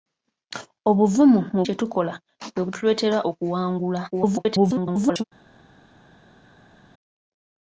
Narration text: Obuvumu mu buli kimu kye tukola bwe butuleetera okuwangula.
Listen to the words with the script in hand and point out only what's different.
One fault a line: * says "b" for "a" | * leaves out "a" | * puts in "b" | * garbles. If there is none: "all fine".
* leaves out "buli kimu"
* garbles